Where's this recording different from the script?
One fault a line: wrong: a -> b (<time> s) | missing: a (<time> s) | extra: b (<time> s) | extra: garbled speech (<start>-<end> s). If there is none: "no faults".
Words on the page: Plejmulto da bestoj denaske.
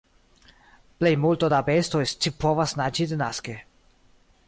extra: scipovas naĝi (2.1 s)